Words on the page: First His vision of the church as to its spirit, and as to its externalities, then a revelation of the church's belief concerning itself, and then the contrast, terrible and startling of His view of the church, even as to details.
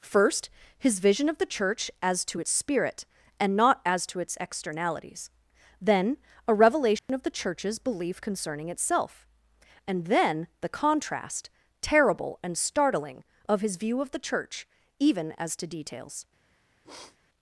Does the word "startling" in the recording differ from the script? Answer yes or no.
no